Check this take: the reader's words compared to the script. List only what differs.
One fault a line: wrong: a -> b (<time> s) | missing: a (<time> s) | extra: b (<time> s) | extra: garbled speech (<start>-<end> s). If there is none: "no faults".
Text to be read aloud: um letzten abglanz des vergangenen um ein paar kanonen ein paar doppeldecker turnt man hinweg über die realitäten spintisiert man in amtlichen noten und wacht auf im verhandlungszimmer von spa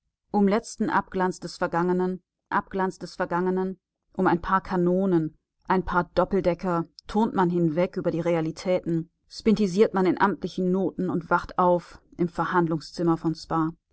extra: abglanz des vergangenen (2.5 s)